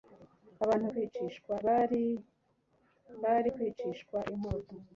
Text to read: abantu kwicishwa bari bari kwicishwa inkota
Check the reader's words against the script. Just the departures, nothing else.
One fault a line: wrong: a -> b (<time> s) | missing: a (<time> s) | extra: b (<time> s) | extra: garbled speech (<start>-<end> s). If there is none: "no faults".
no faults